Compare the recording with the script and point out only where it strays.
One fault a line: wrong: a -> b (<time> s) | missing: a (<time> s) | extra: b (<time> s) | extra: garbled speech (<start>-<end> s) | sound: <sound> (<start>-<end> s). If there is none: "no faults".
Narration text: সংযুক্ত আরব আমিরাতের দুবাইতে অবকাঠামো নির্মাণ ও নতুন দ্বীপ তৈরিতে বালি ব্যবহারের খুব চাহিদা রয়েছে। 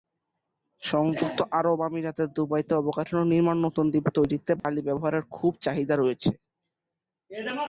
sound: dropout (4.6-4.6 s)